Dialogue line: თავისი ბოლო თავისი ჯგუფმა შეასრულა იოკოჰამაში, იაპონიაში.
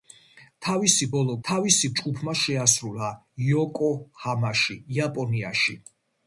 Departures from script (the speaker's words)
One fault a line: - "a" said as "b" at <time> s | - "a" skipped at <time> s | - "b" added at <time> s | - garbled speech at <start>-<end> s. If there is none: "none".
none